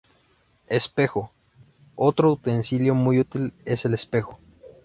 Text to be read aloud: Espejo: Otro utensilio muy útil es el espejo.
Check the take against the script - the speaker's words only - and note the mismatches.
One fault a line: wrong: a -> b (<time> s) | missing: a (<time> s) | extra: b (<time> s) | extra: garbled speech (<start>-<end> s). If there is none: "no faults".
no faults